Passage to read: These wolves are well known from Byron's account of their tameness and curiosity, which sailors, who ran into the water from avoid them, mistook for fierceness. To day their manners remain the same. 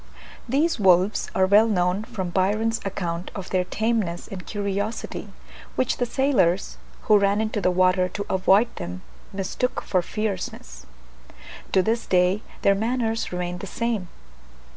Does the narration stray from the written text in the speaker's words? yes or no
yes